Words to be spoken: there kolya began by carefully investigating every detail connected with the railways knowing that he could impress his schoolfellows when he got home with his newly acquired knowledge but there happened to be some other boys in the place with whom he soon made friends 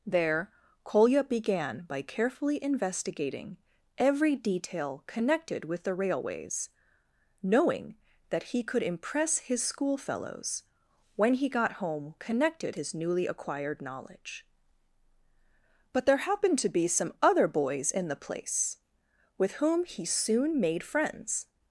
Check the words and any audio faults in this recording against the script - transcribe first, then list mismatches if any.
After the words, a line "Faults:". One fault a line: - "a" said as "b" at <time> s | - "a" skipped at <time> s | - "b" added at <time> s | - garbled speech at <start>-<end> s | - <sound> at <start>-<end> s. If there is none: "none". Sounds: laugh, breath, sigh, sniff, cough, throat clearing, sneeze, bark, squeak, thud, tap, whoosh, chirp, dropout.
there kolya began by carefully investigating every detail connected with the railways knowing that he could impress his schoolfellows when he got home connected his newly acquired knowledge but there happened to be some other boys in the place with whom he soon made friends
Faults:
- "with" said as "connected" at 12.2 s